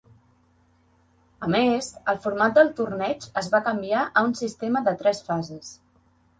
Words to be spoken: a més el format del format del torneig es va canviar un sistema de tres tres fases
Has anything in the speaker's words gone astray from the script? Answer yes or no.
yes